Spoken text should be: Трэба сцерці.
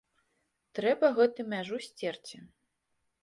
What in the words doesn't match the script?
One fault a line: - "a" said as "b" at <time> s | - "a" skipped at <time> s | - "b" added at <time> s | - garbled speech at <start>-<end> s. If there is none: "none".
- "гэту мяжу" added at 1.2 s